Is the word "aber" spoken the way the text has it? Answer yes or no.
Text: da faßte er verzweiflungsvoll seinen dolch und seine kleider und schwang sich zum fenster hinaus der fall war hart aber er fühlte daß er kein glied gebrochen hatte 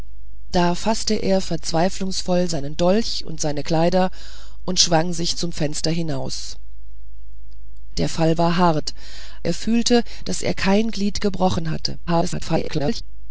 no